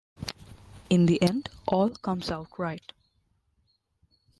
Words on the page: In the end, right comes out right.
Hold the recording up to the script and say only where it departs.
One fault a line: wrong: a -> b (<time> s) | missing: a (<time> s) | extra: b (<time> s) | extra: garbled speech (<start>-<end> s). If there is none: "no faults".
wrong: right -> all (1.7 s)